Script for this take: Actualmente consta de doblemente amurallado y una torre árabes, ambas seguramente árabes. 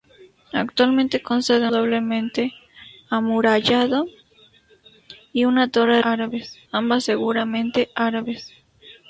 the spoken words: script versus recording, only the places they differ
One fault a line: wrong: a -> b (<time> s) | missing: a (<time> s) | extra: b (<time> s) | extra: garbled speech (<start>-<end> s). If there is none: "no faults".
no faults